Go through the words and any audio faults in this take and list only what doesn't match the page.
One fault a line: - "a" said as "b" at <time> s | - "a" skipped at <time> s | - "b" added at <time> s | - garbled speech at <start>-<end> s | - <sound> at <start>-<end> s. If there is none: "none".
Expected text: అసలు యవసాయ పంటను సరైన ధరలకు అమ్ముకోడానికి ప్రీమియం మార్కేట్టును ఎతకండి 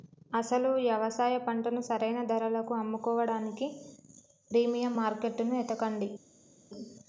none